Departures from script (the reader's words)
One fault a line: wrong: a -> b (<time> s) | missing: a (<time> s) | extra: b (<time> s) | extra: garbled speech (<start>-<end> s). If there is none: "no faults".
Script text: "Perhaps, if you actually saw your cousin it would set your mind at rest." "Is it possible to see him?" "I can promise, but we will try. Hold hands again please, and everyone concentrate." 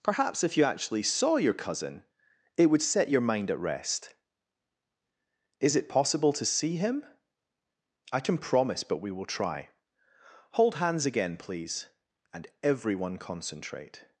no faults